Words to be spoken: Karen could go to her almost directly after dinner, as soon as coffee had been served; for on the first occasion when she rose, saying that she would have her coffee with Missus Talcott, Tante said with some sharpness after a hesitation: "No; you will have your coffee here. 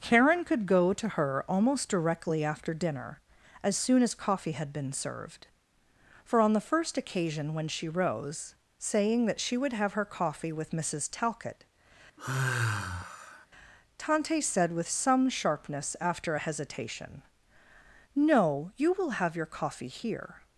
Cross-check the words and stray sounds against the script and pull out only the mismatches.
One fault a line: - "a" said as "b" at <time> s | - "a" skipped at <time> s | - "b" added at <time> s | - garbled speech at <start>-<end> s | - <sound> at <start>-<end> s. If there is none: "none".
- sigh at 12.2-13.5 s